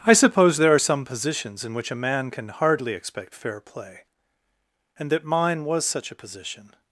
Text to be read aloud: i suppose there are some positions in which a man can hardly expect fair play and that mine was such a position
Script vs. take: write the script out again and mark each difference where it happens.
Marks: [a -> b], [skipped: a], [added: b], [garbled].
i suppose there are some positions in which a man can hardly expect fair play and that mine was such a position